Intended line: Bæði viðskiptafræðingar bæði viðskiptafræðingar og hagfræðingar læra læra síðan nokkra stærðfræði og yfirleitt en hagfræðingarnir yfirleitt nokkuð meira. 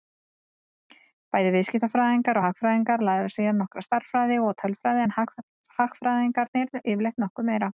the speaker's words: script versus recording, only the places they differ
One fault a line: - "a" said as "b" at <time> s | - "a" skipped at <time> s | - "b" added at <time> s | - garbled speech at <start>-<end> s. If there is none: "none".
- "bæði viðskiptafræðingar" skipped at 2.4 s
- "læra" skipped at 3.3 s
- "yfirleitt" said as "tölfræði" at 4.6 s